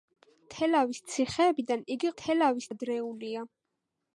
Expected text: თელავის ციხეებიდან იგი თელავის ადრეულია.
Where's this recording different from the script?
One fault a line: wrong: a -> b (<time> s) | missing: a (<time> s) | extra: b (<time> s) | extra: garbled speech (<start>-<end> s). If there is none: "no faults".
no faults